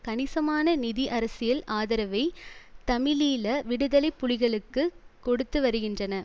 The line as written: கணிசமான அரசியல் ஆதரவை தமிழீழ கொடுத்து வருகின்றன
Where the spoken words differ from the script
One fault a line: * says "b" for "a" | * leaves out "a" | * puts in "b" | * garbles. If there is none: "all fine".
* puts in "நிதி"
* puts in "விடுதலை புலிகளுக்கு"